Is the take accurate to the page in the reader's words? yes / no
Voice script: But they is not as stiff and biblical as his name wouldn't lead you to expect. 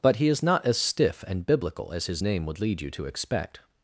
no